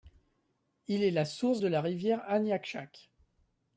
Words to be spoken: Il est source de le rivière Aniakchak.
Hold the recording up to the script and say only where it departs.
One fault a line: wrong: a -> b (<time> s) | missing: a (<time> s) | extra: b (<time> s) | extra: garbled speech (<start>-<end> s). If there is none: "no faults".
extra: la (1.1 s)
wrong: le -> la (1.7 s)